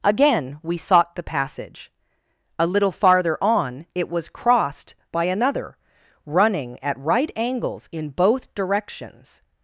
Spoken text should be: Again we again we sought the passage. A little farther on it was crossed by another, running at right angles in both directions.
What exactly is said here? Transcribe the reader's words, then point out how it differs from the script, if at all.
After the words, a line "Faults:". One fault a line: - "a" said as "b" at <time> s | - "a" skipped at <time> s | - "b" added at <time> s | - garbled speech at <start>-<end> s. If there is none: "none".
Again we sought the passage. A little farther on it was crossed by another, running at right angles in both directions.
Faults:
- "again we" skipped at 0.8 s